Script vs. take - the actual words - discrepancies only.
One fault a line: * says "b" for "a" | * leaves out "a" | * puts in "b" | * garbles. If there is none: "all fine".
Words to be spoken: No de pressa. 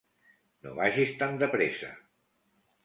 * puts in "vagis tan"